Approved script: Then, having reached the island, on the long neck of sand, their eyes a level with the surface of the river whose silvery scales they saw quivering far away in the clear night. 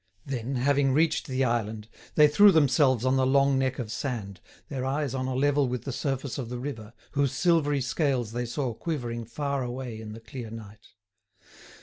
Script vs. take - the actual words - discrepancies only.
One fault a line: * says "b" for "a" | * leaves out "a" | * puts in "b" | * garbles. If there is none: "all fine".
* puts in "they threw themselves"
* puts in "on"